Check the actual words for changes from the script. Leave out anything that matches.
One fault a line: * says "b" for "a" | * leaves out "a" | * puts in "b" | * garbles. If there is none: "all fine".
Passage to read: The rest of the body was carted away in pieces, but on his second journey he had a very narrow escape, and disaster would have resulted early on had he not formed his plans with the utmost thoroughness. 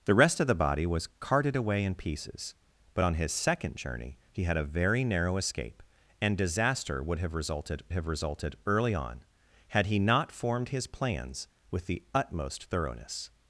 * puts in "have resulted"